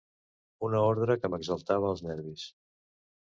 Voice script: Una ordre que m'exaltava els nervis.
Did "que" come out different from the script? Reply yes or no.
no